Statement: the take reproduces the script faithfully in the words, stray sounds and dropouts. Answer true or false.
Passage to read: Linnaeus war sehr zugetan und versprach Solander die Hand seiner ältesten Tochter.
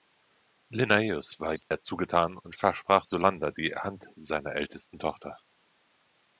false